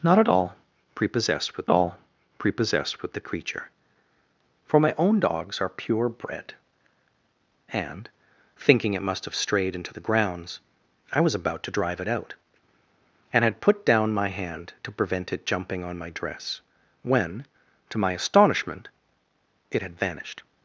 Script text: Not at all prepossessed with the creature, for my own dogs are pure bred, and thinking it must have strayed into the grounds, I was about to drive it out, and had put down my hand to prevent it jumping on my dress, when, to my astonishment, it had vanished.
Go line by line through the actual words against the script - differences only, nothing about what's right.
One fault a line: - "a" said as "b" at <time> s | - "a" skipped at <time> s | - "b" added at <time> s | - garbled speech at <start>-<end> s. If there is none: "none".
- "all prepossessed with" added at 1.7 s